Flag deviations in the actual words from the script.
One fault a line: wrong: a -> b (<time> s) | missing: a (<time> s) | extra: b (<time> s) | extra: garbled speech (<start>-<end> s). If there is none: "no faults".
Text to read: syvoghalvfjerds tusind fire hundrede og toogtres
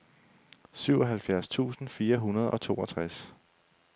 no faults